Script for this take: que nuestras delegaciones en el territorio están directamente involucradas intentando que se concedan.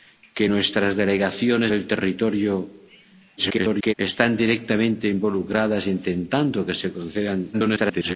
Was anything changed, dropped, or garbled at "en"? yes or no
yes